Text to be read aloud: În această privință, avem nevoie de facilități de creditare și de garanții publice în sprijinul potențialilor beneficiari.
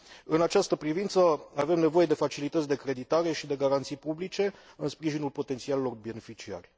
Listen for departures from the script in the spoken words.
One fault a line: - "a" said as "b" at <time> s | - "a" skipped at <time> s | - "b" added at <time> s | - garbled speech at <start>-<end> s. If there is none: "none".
none